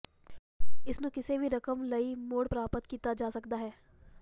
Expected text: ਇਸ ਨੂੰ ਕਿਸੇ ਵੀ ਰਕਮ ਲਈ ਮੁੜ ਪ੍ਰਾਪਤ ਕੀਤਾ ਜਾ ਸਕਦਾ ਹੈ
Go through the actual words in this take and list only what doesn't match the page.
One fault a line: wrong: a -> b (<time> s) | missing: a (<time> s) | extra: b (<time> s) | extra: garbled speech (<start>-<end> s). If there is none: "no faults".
no faults